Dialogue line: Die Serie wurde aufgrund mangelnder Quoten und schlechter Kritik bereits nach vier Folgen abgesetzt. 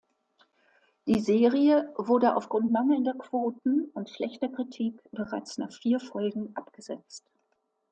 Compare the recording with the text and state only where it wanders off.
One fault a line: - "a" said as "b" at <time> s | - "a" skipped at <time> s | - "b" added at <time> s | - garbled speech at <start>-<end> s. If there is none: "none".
none